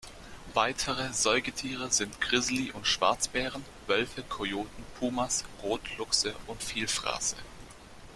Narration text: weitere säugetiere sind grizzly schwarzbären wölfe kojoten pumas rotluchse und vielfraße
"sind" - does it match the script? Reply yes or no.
yes